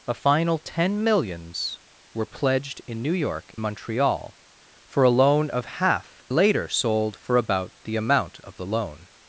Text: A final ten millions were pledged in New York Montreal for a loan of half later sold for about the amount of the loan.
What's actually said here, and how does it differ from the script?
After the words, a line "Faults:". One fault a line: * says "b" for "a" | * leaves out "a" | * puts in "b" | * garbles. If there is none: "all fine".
A final ten millions were pledged in New York Montreal for a loan of half later sold for about the amount of the loan.
Faults:
all fine